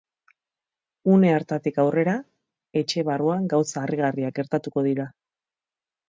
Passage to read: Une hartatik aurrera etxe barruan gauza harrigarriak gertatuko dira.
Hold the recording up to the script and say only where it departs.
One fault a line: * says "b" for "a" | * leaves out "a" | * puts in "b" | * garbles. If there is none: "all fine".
all fine